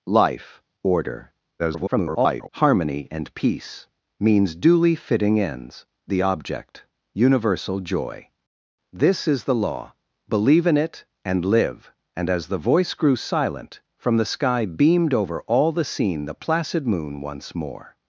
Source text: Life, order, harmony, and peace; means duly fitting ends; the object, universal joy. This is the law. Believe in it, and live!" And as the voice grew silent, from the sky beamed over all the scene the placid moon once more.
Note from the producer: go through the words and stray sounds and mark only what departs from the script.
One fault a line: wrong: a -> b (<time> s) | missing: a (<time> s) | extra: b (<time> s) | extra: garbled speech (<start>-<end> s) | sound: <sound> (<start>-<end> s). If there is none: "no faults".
extra: garbled speech (1.6-2.5 s)